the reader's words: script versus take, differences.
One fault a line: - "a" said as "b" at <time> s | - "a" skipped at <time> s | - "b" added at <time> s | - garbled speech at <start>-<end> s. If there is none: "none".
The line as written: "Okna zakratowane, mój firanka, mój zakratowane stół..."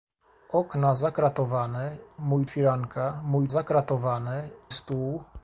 none